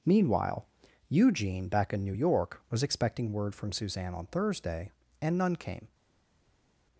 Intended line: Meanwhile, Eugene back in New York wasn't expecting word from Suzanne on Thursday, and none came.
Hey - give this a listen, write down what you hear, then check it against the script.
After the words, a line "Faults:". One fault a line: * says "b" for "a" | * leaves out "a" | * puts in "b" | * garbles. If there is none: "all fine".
Meanwhile, Eugene back in New York was expecting word from Suzanne on Thursday, and none came.
Faults:
* says "was" for "wasn't"